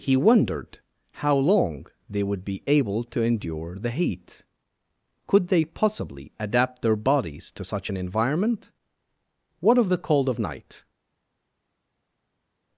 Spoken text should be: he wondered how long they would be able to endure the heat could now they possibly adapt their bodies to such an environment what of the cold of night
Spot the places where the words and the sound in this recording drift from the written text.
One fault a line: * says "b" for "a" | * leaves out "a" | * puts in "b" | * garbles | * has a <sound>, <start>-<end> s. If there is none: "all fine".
* leaves out "now"